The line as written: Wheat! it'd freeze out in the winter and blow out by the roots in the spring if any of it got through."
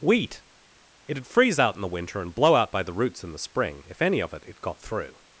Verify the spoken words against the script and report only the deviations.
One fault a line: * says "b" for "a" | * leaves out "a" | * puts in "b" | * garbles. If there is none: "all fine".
* puts in "it"